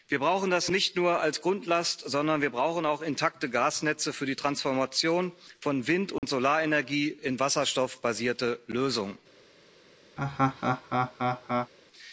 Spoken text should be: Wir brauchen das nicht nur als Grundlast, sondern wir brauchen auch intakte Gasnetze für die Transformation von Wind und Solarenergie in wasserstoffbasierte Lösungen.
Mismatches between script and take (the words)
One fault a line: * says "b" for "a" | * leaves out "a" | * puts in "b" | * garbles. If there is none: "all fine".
all fine